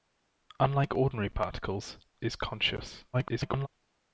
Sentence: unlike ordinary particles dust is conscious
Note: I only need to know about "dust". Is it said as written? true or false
false